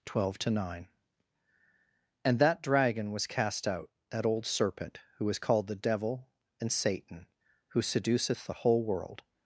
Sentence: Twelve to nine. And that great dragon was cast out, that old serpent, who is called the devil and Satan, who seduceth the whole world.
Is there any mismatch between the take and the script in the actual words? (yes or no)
yes